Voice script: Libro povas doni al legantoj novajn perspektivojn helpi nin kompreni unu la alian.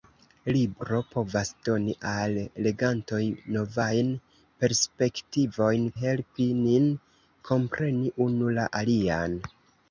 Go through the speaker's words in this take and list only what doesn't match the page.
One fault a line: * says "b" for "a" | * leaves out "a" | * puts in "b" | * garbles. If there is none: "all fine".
all fine